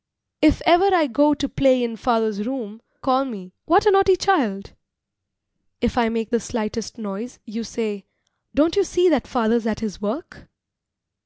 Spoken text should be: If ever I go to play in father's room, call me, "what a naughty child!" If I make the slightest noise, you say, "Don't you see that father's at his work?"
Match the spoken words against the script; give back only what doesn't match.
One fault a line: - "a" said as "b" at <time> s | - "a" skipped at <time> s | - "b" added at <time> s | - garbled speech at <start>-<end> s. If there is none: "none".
none